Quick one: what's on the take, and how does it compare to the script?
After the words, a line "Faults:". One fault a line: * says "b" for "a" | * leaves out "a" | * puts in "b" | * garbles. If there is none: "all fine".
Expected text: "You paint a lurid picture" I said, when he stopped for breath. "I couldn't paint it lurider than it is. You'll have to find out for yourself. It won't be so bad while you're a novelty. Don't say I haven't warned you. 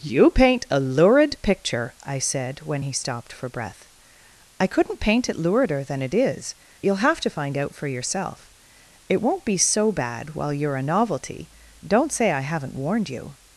"You paint a lurid picture" I said, when he stopped for breath. "I couldn't paint it lurider than it is. You'll have to find out for yourself. It won't be so bad while you're a novelty. Don't say I haven't warned you.
Faults:
all fine